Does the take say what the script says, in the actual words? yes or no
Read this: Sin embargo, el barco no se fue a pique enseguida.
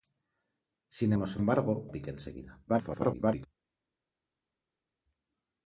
no